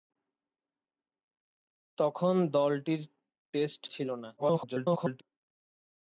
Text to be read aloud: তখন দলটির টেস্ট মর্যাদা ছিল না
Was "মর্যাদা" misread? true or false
true